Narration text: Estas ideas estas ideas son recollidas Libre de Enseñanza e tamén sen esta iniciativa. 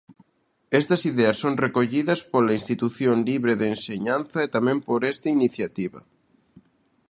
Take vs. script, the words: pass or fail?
fail